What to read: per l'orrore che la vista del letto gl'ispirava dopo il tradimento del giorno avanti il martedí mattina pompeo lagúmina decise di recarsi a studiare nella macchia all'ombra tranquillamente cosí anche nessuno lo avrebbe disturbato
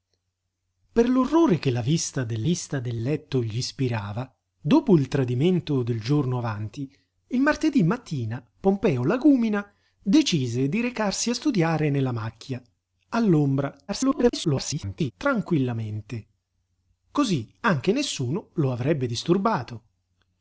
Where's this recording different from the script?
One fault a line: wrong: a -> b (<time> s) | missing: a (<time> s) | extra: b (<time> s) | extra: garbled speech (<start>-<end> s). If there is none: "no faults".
extra: vista del (2.4 s)
extra: garbled speech (13.9-15.1 s)